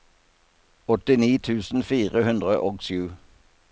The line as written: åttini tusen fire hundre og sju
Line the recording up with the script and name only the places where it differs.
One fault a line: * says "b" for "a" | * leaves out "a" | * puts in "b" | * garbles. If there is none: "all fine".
all fine